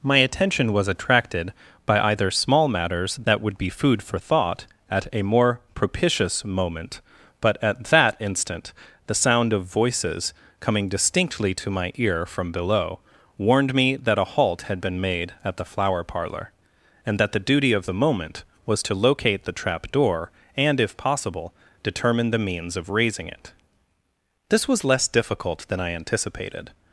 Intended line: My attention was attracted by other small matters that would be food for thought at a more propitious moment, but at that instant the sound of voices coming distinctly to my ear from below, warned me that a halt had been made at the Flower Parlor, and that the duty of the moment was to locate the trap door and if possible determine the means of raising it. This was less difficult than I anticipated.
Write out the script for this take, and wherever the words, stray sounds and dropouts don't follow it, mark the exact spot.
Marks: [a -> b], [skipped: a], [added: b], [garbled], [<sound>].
My attention was attracted by [other -> either] small matters that would be food for thought at a more propitious moment, but at that instant the sound of voices coming distinctly to my ear from below, warned me that a halt had been made at the Flower Parlor, and that the duty of the moment was to locate the trap door and if possible determine the means of raising it. This was less difficult than I anticipated.